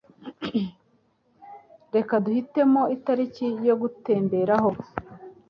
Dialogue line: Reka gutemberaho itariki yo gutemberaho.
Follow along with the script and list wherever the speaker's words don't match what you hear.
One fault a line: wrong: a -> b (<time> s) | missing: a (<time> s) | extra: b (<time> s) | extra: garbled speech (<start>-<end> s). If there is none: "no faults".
wrong: gutemberaho -> duhitemo (2.2 s)